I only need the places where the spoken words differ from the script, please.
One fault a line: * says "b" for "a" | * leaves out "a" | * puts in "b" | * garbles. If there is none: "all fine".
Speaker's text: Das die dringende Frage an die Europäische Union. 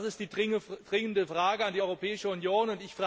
* puts in "ist"